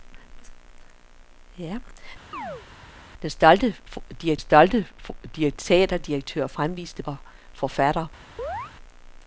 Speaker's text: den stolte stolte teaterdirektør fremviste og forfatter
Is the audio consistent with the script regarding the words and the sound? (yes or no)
no